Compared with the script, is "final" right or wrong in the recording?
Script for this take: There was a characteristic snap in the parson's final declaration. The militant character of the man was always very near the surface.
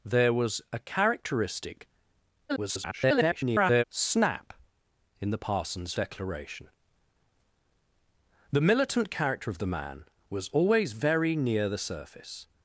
wrong